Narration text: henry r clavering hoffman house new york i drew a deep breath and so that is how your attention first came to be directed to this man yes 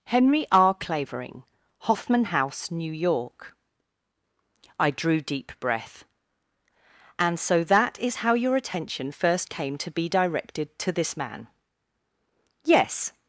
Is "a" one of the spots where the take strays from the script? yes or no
yes